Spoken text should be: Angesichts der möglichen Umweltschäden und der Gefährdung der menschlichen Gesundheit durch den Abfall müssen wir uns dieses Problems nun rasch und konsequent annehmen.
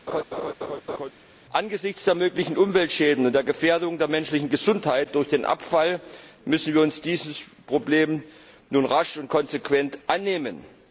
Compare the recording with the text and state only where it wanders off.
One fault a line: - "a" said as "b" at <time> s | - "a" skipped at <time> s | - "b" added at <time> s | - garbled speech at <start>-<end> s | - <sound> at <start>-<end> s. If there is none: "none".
- laugh at 0.1-1.1 s